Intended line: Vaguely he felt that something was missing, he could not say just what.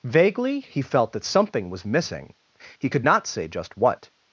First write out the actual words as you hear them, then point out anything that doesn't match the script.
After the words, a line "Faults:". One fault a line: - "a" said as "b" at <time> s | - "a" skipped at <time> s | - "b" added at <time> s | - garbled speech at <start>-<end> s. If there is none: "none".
Vaguely he felt that something was missing, he could not say just what.
Faults:
none